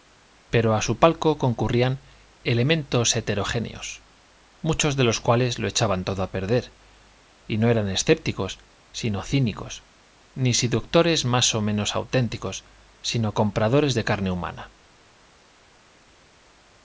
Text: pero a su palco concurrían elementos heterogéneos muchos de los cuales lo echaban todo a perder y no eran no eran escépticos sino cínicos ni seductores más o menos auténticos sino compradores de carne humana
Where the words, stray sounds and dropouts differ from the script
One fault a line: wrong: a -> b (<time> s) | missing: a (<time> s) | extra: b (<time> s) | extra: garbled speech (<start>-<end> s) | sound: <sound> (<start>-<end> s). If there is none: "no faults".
missing: no eran (7.9 s)